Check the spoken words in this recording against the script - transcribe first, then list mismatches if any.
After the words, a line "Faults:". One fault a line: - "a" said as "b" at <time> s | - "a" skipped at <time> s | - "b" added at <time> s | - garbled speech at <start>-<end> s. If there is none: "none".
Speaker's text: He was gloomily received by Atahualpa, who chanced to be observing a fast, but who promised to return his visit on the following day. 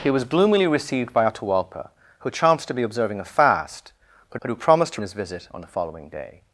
He was gloomily received by Atahualpa, who chanced to be observing a fast, but but who promised to his visit on the following day.
Faults:
- "but" added at 4.4 s
- "return" skipped at 5.0 s